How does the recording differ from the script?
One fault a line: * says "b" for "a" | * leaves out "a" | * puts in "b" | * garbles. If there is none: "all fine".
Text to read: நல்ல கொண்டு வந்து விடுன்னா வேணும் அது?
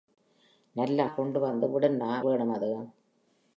all fine